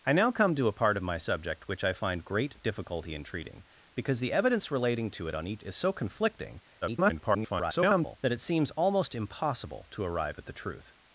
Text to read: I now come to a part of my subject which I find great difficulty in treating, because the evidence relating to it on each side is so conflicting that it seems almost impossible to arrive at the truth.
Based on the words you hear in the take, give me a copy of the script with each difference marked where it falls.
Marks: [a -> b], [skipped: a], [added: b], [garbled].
I now come to a part of my subject which I find great difficulty in treating, because the evidence relating to it on each [skipped: side] is so conflicting [garbled] that it seems almost impossible to arrive at the truth.